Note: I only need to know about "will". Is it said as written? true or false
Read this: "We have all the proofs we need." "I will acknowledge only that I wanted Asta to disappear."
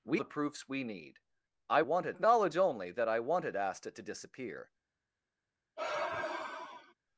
false